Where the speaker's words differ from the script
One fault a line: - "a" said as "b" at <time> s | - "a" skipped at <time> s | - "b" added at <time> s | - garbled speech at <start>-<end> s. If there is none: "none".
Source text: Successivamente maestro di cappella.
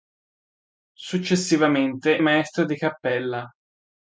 none